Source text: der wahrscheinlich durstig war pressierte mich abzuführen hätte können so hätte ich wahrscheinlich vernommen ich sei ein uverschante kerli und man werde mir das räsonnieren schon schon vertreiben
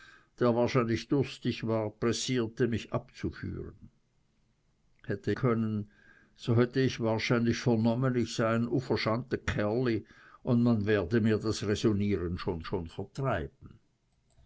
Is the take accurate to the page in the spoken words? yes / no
yes